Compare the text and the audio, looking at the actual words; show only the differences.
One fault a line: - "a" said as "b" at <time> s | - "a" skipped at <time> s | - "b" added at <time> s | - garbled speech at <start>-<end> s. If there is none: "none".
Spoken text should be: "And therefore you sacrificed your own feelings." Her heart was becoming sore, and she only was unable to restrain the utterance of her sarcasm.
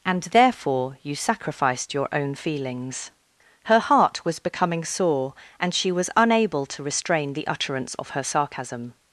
- "only" skipped at 5.9 s